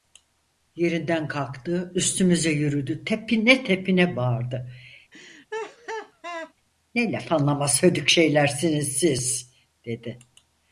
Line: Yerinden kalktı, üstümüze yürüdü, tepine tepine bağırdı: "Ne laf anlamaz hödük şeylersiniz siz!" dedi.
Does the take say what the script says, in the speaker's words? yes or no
yes